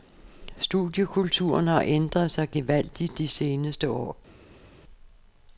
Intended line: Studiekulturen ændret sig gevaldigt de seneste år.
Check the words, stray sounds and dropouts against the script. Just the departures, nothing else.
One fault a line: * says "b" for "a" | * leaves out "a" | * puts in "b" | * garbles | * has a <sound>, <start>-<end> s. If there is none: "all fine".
* puts in "har"